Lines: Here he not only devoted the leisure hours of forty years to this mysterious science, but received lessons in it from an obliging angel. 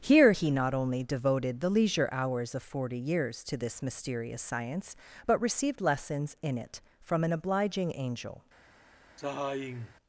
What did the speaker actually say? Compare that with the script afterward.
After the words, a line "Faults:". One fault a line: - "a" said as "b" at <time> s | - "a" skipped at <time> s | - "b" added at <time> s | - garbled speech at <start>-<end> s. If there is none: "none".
Here he not only devoted the leisure hours of forty years to this mysterious science, but received lessons in it from an obliging angel.
Faults:
none